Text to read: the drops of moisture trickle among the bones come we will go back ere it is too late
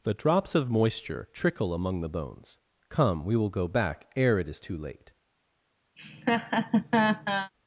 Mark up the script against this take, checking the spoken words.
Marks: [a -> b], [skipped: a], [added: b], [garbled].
the drops of moisture trickle among the bones come we will go back ere it is too late